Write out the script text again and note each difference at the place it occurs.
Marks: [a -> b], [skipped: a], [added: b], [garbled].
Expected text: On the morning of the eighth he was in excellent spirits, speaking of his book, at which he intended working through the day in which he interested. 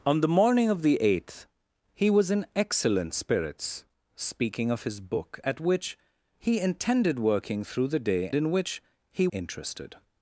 On the morning of the eighth he was in excellent spirits, speaking of his book, at which he intended working through the day in which he interested.